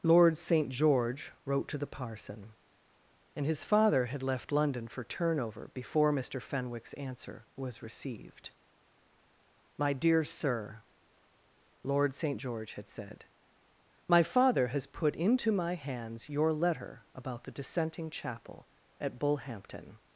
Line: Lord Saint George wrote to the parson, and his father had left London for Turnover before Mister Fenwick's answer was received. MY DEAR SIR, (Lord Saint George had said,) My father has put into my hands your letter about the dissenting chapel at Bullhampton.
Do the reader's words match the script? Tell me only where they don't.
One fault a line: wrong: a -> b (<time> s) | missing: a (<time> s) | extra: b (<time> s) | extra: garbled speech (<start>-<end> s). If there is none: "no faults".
no faults